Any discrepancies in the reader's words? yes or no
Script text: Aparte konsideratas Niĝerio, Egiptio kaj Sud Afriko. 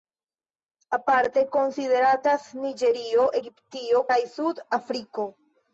no